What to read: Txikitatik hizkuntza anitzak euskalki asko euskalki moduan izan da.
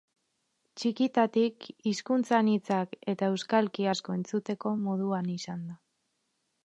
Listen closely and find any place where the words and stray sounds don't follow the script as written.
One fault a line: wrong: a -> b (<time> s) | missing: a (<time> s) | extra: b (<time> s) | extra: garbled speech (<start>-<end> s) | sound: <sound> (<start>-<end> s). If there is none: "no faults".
extra: eta (3.1 s)
wrong: euskalki -> entzuteko (4.2 s)